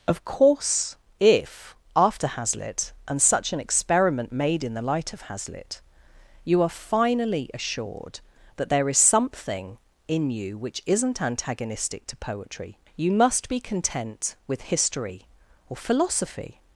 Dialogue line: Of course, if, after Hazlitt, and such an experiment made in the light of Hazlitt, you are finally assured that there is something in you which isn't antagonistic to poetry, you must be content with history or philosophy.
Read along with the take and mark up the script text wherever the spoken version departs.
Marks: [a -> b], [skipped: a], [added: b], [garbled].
Of course, if, after Hazlitt, and such an experiment made in the light of Hazlitt, you are finally assured that there is something in you which isn't antagonistic to poetry, you must be content with history or philosophy.